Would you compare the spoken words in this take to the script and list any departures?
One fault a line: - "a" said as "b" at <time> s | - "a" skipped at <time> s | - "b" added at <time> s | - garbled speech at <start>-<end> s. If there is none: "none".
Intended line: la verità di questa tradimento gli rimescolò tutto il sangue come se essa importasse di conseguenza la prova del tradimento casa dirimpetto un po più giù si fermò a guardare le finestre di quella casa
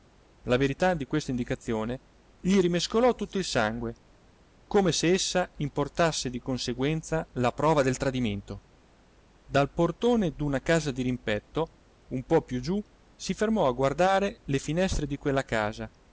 - "tradimento" said as "indicazione" at 1.3 s
- "dal portone d'una" added at 9.4 s